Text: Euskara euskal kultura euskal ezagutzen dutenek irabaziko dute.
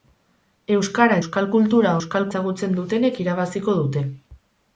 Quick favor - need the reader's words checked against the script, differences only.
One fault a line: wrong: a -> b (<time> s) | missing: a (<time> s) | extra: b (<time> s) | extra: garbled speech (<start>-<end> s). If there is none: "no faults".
no faults